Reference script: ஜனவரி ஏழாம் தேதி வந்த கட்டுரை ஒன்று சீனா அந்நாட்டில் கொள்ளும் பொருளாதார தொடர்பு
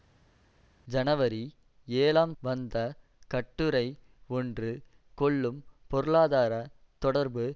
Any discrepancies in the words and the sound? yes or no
yes